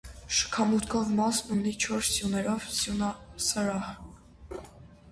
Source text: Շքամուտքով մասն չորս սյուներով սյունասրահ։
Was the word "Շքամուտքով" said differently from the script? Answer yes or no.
no